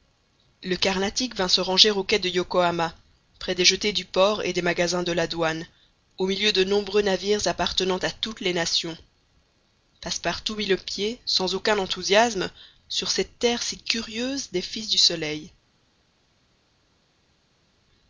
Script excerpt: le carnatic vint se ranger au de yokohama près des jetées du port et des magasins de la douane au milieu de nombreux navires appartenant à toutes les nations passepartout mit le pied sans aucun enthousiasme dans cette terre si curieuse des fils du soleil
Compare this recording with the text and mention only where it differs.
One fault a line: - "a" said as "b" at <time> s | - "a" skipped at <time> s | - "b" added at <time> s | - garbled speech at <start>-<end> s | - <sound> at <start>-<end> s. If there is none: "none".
- "quai" added at 2.0 s
- "dans" said as "sur" at 12.9 s